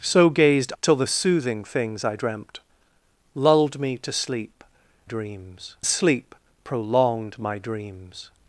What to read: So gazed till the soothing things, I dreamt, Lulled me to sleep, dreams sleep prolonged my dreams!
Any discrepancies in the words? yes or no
no